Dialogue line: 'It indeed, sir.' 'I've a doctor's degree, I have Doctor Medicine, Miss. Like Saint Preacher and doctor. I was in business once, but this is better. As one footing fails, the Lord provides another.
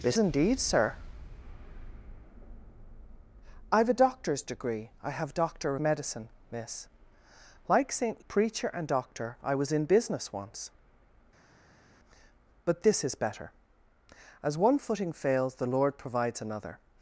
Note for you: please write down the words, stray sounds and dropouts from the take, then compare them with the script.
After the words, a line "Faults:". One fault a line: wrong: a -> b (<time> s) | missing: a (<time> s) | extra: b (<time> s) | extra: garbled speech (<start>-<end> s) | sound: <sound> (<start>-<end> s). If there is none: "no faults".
'It indeed, sir.' 'I've a doctor's degree, I have Doctor Medicine, Miss. Like Saint Preacher and doctor. I was in business once, but this is better. As one footing fails, the Lord provides another.
Faults:
no faults